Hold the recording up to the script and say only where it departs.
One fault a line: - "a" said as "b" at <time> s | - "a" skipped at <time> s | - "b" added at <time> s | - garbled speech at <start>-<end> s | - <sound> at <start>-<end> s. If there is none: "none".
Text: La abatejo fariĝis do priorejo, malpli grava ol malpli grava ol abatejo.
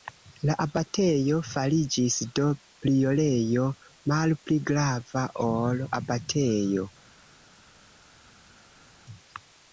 - "malpli grava ol" skipped at 5.8 s